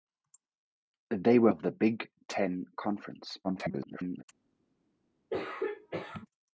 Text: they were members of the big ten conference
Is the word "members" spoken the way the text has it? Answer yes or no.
no